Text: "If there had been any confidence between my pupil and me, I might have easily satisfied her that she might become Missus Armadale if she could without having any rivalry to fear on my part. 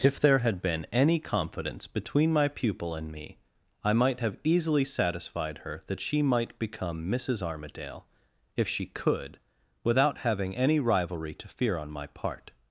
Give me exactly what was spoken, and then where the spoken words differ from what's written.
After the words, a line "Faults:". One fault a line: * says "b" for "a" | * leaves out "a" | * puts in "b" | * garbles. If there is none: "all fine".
"If there had been any confidence between my pupil and me, I might have easily satisfied her that she might become Missus Armadale if she could without having any rivalry to fear on my part.
Faults:
all fine